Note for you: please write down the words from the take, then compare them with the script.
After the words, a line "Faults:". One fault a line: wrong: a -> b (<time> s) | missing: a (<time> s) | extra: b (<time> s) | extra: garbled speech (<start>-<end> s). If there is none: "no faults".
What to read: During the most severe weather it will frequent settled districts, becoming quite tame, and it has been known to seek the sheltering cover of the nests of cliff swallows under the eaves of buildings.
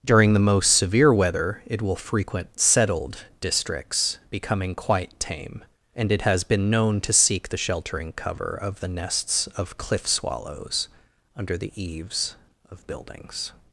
During the most severe weather it will frequent settled districts, becoming quite tame, and it has been known to seek the sheltering cover of the nests of cliff swallows under the eaves of buildings.
Faults:
no faults